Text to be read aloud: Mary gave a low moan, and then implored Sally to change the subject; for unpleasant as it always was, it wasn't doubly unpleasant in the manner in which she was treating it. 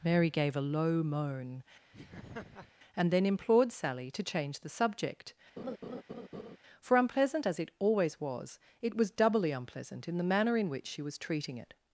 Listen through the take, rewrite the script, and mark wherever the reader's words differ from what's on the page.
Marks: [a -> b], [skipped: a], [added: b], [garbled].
Mary gave a low moan, and then implored Sally to change the subject; for unpleasant as it always was, it [wasn't -> was] doubly unpleasant in the manner in which she was treating it.